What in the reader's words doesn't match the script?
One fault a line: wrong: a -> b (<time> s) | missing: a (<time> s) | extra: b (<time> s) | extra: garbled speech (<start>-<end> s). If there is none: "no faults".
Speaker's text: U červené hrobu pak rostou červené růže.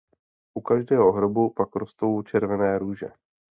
wrong: červené -> každého (0.6 s)